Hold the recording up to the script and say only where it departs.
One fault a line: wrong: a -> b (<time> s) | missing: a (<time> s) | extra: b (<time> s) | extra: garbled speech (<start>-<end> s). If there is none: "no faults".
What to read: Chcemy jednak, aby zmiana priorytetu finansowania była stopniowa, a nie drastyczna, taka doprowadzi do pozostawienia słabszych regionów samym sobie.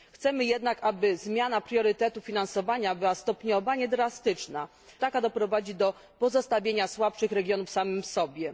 no faults